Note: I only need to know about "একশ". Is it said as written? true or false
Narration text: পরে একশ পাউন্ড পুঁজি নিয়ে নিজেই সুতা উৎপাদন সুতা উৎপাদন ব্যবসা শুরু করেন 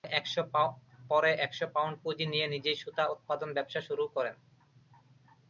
true